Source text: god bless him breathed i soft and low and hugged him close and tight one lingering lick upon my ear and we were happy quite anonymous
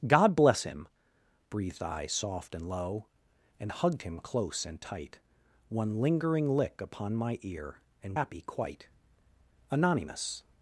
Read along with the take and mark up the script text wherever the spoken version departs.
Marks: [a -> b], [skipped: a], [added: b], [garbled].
god bless him breathed i soft and low and hugged him close and tight one lingering lick upon my ear and [skipped: we were] happy quite anonymous